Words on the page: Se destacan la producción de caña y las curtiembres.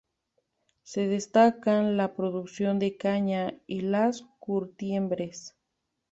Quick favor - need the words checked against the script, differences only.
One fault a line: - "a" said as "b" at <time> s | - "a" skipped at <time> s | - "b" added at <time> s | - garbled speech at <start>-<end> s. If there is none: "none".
none